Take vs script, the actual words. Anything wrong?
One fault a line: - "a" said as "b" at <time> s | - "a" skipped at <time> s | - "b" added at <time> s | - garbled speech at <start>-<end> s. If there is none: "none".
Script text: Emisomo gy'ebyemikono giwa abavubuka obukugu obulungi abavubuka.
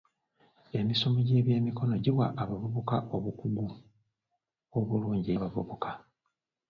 none